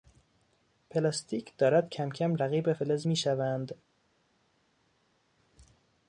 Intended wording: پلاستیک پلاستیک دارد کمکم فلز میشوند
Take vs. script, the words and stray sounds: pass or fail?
fail